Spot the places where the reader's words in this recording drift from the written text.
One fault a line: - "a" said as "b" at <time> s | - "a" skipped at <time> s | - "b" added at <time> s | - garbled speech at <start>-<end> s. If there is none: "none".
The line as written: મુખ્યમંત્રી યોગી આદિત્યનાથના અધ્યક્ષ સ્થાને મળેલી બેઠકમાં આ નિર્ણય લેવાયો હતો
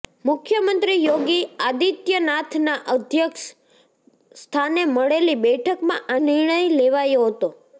none